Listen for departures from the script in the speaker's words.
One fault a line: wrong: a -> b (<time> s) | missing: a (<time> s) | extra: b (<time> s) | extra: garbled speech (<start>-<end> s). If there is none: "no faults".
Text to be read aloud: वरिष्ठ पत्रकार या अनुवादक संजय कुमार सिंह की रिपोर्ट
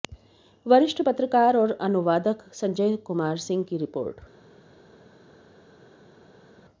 wrong: या -> और (1.6 s)